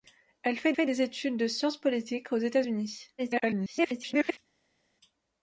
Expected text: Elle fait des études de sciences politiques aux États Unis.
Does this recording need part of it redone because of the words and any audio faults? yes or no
yes